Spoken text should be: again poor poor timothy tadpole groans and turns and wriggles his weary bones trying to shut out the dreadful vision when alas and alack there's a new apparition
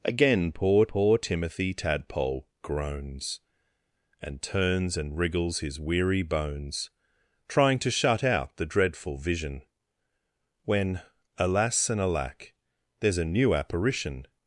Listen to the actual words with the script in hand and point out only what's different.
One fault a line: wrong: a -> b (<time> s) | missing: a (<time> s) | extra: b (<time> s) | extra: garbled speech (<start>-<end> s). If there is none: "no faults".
no faults